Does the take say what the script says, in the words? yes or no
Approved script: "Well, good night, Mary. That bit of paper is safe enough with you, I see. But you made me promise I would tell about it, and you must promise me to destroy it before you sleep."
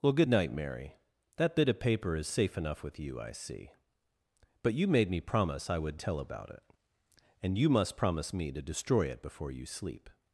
yes